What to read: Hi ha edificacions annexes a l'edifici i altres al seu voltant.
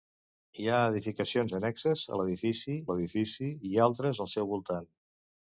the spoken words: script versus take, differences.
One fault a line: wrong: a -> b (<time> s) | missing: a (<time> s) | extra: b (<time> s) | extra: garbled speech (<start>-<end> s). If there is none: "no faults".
extra: l'edifici (2.9 s)